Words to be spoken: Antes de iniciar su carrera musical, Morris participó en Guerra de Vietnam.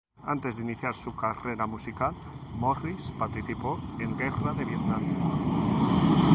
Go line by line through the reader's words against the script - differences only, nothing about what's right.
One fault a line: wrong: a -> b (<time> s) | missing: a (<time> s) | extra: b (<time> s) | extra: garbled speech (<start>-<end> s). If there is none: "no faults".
no faults